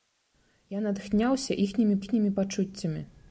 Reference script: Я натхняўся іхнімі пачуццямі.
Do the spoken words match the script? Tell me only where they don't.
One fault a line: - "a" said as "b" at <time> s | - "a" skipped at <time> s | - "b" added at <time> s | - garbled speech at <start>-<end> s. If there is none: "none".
- "іхнімі" added at 2.0 s